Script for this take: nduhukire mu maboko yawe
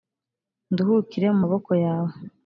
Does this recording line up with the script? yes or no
yes